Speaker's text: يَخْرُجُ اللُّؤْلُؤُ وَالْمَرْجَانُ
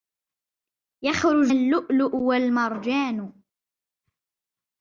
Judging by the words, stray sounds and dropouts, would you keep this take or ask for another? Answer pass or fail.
pass